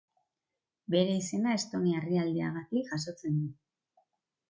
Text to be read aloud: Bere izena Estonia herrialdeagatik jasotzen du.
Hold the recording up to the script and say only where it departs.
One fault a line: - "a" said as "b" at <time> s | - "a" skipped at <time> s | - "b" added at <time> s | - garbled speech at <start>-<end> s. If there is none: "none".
none